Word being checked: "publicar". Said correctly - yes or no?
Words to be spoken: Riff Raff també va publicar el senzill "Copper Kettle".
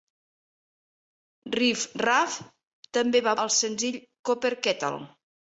no